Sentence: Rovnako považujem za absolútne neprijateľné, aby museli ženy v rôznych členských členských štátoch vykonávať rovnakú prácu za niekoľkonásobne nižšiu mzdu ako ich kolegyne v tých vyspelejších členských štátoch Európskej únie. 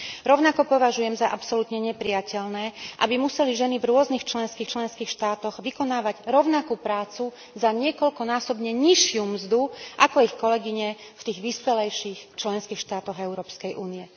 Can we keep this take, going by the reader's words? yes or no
yes